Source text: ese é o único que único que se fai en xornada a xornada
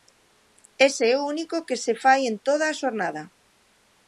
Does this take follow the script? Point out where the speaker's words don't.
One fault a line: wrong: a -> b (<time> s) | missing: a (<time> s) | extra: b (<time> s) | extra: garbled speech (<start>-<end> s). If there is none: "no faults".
missing: único que (1.8 s)
wrong: xornada -> toda (2.5 s)